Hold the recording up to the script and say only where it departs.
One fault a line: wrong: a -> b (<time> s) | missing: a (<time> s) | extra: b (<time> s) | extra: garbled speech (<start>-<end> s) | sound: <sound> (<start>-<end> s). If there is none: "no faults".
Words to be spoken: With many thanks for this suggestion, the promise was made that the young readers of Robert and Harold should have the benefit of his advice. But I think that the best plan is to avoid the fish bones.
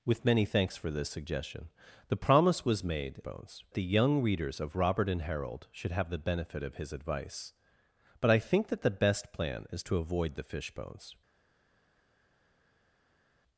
wrong: that -> bones (3.2 s)